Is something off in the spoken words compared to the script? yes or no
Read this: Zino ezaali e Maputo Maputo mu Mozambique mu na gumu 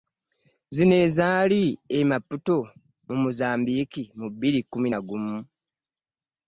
yes